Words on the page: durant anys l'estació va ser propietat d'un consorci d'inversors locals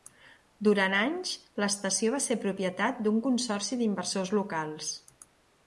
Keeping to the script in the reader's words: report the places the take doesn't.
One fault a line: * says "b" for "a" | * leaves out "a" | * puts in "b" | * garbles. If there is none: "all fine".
all fine